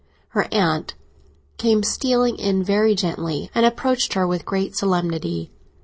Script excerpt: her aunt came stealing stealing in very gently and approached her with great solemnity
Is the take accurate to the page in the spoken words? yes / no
no